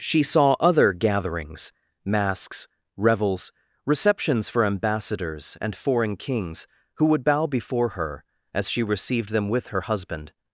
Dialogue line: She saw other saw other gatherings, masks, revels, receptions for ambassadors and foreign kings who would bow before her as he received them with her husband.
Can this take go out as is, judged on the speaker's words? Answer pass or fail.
fail